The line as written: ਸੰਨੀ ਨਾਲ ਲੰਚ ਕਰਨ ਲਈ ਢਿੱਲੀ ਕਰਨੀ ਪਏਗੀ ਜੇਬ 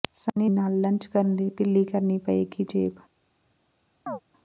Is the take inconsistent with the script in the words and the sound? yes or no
yes